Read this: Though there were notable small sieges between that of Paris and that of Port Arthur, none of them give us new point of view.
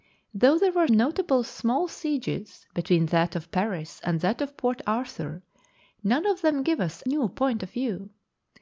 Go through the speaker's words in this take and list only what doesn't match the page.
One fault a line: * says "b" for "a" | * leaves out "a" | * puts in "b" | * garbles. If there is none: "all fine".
all fine